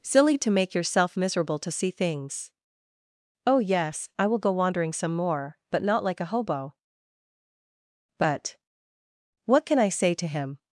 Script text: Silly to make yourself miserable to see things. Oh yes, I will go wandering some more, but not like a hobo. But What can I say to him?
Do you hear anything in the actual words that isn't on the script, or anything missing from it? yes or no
no